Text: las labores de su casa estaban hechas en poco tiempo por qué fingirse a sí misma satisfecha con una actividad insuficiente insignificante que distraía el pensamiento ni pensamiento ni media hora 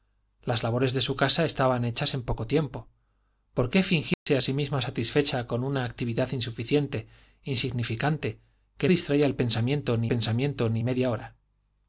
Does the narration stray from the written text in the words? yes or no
no